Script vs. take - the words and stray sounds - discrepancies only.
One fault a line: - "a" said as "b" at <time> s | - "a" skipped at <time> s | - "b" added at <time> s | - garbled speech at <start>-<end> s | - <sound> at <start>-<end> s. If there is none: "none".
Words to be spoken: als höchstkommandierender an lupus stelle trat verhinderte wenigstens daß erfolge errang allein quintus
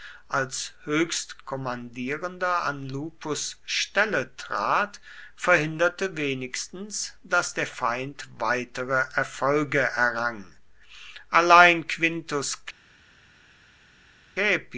- "der feind weitere" added at 7.5 s